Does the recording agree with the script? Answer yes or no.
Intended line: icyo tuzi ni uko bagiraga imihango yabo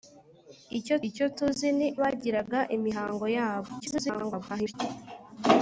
no